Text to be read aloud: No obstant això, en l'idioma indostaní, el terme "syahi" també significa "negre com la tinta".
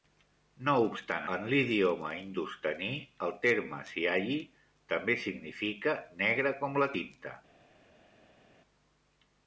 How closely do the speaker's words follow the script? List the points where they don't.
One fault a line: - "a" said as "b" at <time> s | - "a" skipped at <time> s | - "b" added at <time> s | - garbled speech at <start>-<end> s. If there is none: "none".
- "això" skipped at 1.2 s